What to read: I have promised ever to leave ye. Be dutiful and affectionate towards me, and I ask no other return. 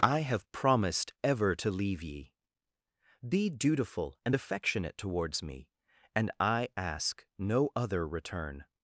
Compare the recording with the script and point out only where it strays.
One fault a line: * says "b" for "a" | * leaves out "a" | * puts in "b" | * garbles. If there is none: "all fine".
all fine